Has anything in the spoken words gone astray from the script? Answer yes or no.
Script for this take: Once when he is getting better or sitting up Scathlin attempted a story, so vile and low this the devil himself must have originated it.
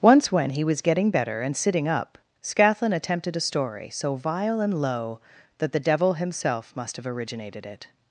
yes